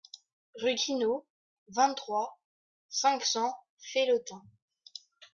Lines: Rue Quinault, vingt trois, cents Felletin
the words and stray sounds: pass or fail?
fail